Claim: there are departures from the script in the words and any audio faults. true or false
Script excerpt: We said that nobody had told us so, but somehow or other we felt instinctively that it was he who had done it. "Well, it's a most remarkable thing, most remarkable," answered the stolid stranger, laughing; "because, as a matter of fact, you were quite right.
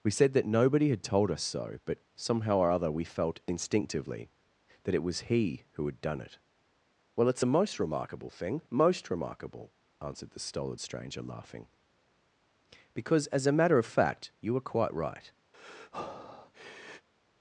true